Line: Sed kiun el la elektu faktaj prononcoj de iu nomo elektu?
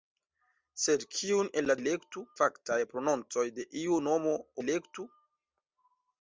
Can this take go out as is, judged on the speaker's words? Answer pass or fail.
pass